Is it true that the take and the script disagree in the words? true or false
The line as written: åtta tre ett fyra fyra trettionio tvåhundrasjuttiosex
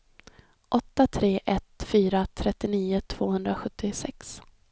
true